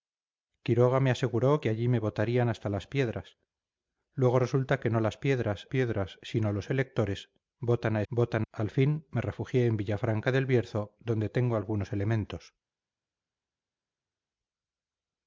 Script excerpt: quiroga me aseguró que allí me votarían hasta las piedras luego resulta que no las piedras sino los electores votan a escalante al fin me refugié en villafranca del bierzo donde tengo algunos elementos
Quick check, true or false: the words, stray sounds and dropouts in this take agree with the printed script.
false